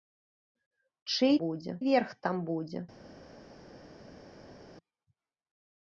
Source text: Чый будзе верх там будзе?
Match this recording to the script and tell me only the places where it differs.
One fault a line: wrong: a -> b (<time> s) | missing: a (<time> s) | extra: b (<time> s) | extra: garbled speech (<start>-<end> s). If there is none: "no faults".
no faults